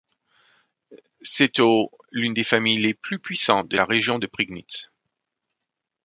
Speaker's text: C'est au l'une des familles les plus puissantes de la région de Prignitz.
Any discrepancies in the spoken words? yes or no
no